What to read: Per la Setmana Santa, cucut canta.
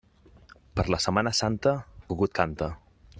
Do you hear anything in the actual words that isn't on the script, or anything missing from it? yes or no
no